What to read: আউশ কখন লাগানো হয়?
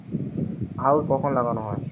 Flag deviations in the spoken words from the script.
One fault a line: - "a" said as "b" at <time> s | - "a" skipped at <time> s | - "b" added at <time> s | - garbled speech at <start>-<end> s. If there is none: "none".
none